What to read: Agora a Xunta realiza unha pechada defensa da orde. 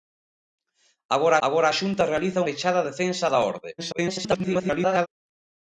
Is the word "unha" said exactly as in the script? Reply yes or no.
no